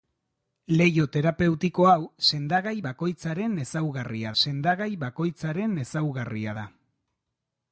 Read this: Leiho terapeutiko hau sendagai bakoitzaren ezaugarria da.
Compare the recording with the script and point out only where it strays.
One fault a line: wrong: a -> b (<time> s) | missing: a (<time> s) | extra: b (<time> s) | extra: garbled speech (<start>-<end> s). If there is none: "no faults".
extra: sendagai bakoitzaren ezaugarria (4.4 s)